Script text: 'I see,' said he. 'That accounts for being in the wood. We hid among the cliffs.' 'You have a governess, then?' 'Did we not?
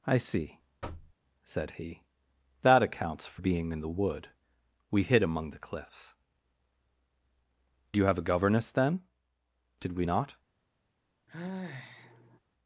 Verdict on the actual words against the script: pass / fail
pass